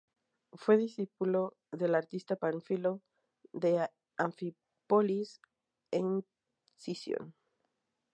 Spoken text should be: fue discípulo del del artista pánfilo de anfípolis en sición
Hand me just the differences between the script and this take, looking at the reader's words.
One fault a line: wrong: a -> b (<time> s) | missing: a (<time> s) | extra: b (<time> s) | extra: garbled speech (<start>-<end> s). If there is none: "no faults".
missing: del (1.9 s)